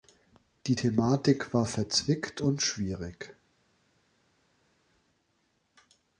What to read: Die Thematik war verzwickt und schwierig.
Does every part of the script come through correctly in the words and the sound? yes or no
yes